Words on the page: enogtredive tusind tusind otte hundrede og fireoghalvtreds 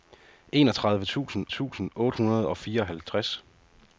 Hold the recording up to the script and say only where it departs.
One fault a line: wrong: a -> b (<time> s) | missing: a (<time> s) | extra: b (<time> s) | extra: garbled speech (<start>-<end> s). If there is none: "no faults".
no faults